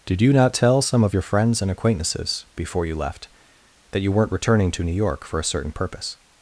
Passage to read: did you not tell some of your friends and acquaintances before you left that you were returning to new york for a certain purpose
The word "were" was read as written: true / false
false